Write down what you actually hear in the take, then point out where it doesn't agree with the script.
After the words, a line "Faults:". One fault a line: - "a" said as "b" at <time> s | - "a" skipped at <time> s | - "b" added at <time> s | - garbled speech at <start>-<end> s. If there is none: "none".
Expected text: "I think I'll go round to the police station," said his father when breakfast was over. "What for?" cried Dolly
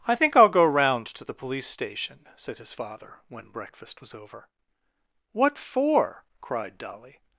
"I think I'll go round to the police station," said his father when breakfast was over. "What for?" cried Dolly
Faults:
none